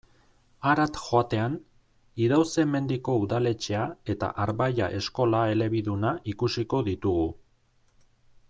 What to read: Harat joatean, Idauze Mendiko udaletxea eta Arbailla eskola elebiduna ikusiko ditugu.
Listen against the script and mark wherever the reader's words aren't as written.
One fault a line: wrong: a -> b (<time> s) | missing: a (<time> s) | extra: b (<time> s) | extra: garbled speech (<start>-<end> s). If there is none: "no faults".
no faults